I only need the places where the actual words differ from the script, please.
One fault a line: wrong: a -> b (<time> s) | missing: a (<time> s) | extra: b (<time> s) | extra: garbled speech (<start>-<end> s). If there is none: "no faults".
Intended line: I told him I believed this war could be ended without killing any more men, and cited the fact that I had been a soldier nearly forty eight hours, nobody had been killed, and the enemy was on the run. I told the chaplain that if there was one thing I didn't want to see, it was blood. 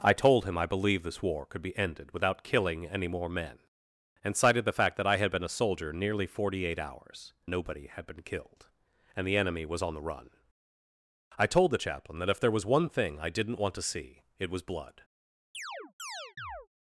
no faults